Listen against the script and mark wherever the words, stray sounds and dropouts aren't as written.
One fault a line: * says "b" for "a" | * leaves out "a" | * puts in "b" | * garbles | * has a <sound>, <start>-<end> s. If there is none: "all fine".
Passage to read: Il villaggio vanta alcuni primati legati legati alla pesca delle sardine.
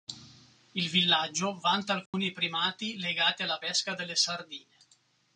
* has a dropout, 2.1-2.1 s
* leaves out "legati"